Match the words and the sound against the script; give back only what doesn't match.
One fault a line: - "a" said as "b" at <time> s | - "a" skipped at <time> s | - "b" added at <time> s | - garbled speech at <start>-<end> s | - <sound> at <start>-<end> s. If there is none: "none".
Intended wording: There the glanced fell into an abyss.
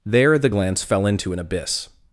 - "glanced" said as "glance" at 0.5 s